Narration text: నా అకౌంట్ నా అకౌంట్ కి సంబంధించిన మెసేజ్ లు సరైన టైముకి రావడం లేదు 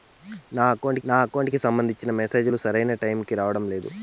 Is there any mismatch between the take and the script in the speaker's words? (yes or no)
no